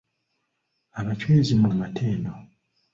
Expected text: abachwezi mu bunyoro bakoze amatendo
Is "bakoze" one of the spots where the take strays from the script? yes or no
yes